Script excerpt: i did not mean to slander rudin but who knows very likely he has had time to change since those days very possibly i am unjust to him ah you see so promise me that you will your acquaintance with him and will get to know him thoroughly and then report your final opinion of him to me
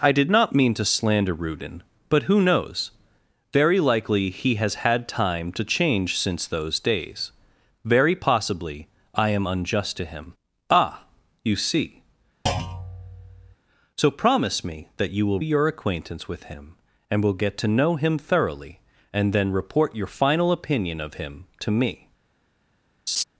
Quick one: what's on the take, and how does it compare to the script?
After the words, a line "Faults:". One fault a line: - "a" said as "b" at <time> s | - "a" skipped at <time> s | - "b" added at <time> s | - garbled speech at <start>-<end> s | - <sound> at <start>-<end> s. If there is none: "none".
i did not mean to slander rudin but who knows very likely he has had time to change since those days very possibly i am unjust to him ah you see so promise me that you will your acquaintance with him and will get to know him thoroughly and then report your final opinion of him to me
Faults:
- thud at 12.5-13.6 s
- laugh at 23.1-23.2 s